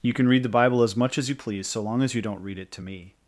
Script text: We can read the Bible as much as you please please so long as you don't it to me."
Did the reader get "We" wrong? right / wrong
wrong